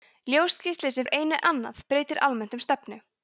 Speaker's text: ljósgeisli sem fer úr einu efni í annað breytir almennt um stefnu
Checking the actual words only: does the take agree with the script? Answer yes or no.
no